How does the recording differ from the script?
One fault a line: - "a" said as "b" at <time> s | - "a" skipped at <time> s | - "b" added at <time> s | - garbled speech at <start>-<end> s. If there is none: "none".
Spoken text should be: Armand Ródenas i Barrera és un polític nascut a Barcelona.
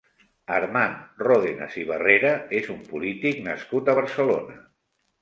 none